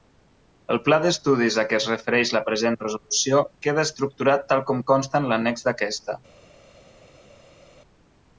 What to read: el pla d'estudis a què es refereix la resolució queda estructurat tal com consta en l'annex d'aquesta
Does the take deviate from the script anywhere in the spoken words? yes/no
yes